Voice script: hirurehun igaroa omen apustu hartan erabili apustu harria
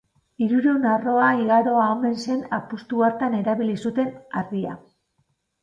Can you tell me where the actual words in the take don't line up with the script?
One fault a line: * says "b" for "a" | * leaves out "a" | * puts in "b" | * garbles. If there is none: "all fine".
* puts in "arroa"
* puts in "zen"
* says "zuten" for "apustu"